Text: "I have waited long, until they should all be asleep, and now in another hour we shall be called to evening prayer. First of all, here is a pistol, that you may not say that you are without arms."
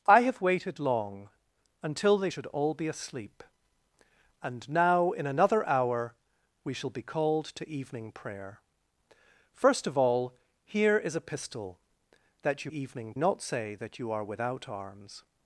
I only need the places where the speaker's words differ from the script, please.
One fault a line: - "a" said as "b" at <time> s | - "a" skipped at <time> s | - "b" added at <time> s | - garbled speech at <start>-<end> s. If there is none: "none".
- "may" said as "evening" at 12.7 s